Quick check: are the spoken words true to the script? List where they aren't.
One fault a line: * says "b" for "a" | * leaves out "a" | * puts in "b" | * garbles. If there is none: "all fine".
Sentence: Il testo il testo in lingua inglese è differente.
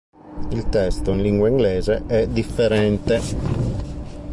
* leaves out "il testo"